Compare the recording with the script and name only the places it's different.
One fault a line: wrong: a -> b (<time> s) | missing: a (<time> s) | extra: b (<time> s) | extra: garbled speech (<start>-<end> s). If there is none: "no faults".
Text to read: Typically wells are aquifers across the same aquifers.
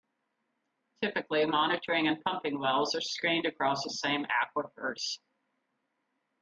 extra: monitoring and pumping (1.4 s)
wrong: aquifers -> screened (3.0 s)